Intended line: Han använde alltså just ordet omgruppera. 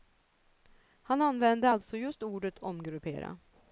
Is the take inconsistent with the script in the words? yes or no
no